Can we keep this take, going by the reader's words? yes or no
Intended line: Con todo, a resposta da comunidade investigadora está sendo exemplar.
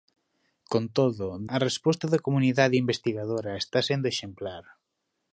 yes